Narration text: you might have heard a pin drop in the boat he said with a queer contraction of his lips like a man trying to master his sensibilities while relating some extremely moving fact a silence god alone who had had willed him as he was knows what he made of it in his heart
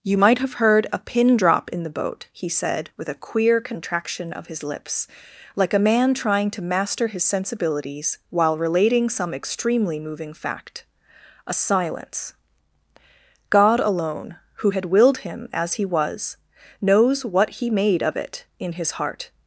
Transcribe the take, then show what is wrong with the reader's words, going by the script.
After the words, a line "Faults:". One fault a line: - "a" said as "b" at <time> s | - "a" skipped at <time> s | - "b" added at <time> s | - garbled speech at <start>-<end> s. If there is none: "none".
you might have heard a pin drop in the boat he said with a queer contraction of his lips like a man trying to master his sensibilities while relating some extremely moving fact a silence god alone who had willed him as he was knows what he made of it in his heart
Faults:
- "had" skipped at 14.9 s